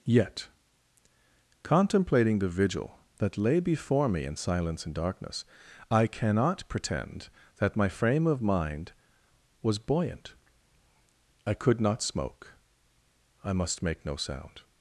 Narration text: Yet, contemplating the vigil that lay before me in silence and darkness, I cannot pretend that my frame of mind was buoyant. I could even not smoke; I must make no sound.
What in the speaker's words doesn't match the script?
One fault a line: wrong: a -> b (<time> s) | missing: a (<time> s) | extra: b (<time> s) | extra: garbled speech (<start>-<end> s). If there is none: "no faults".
missing: even (11.8 s)